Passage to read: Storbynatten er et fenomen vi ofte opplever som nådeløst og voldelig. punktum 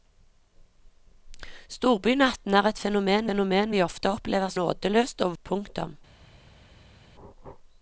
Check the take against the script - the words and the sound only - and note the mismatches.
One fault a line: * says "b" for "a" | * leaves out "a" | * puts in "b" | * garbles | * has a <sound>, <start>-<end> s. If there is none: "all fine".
* puts in "fenomen"
* leaves out "som"
* leaves out "voldelig"